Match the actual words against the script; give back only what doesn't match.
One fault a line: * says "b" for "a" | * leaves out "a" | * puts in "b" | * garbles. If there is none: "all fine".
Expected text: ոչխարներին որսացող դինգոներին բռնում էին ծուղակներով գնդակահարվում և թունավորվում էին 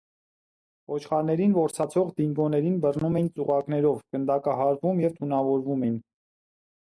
all fine